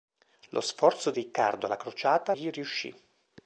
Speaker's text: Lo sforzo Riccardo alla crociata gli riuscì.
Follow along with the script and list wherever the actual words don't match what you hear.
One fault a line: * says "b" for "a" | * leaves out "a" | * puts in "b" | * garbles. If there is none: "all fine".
all fine